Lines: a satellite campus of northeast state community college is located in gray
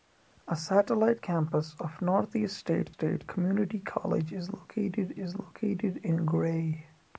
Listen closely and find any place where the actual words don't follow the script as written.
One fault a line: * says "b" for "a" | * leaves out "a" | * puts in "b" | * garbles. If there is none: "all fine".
* puts in "state"
* puts in "is located"